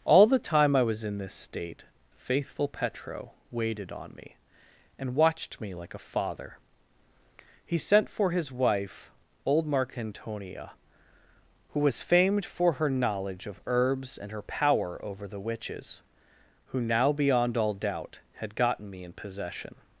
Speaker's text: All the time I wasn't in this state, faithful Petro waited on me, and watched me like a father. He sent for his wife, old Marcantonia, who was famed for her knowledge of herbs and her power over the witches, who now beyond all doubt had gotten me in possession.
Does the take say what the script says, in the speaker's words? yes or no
no